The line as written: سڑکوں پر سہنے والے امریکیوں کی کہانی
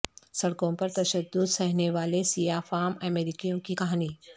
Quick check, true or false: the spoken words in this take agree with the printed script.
false